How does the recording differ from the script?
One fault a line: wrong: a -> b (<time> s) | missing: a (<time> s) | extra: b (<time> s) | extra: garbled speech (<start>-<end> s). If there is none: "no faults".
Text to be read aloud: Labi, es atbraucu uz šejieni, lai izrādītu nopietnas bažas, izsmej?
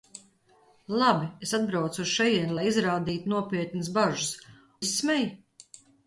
no faults